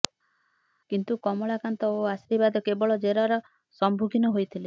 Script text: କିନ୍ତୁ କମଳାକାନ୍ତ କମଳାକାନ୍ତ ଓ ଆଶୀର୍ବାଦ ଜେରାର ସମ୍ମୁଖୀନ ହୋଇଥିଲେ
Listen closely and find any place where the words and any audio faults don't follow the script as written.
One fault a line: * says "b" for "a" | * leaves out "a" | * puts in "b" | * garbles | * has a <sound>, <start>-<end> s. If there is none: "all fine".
* leaves out "କମଳାକାନ୍ତ"
* puts in "କେବଳ"